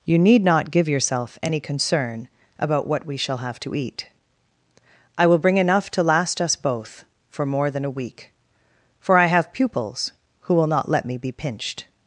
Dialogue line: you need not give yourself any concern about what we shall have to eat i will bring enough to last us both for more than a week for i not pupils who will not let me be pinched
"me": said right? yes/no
yes